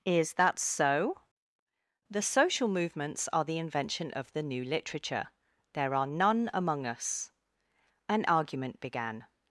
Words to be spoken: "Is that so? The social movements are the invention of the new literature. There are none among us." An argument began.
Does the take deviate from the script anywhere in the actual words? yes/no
no